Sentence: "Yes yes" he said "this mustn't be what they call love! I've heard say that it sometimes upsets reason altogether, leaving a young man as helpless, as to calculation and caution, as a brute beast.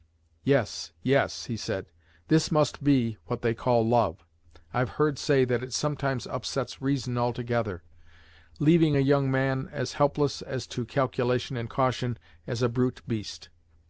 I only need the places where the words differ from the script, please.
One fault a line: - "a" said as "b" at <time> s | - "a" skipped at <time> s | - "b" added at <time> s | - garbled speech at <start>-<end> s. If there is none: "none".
- "mustn't" said as "must" at 2.5 s